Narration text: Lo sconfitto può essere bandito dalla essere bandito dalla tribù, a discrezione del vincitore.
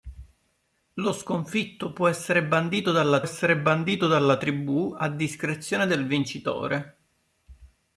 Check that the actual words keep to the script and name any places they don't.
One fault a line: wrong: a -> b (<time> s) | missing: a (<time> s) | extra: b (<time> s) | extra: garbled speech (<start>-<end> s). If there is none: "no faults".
no faults